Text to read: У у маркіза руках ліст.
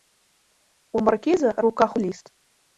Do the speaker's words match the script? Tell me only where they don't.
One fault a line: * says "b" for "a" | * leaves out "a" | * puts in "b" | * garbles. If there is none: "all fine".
all fine